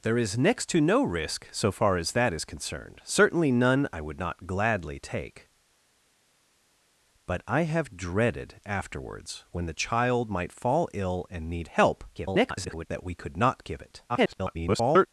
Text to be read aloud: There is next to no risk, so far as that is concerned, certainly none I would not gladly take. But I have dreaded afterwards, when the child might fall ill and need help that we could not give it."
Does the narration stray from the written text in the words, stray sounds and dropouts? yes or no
yes